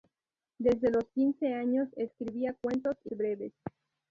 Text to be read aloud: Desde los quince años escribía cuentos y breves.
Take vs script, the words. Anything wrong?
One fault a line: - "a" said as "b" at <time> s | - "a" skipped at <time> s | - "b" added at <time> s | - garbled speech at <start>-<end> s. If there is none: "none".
none